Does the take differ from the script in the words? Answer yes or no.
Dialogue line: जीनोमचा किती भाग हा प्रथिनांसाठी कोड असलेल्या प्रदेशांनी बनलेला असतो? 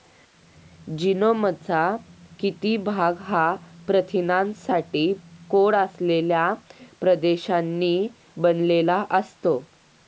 no